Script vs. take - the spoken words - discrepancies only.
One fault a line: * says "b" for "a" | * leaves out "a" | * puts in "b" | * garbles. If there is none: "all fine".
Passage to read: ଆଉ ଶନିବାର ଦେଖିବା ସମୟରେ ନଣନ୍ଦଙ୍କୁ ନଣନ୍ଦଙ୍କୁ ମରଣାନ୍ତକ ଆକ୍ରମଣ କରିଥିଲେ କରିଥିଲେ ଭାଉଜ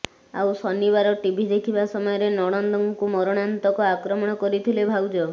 * puts in "ଟିଭି"
* leaves out "ନଣନ୍ଦଙ୍କୁ"
* leaves out "କରିଥିଲେ"